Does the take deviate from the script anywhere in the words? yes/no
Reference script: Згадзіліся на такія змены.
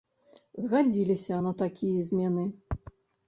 no